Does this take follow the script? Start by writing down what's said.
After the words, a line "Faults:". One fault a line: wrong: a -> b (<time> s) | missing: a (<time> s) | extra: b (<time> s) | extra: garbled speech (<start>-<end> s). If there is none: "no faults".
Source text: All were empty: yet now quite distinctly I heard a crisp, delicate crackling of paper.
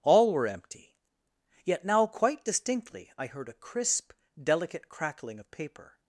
All were empty: yet now quite distinctly I heard a crisp, delicate crackling of paper.
Faults:
no faults